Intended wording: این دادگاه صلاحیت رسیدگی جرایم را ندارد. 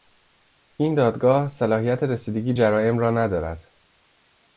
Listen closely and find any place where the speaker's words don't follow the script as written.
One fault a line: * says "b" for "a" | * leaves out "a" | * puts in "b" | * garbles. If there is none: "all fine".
all fine